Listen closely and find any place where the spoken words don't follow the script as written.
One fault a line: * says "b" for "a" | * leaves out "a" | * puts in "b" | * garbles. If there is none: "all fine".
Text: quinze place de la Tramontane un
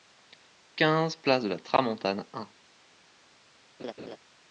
all fine